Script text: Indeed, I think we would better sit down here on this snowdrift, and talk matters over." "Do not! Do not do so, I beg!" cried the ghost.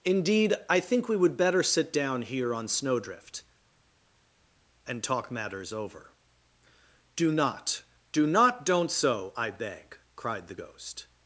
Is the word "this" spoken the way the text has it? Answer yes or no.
no